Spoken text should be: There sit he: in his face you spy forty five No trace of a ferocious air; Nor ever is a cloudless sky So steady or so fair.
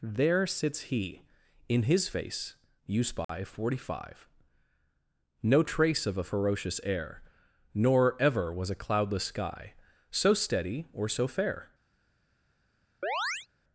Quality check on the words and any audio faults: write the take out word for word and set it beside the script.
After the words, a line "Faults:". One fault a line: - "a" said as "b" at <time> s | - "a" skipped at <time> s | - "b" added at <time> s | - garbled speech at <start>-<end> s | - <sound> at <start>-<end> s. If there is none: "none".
There sits he: in his face you spy forty five No trace of a ferocious air; Nor ever was a cloudless sky So steady or so fair.
Faults:
- "sit" said as "sits" at 0.5 s
- dropout at 3.2-3.3 s
- "is" said as "was" at 8.5 s
- chirp at 13.0-13.5 s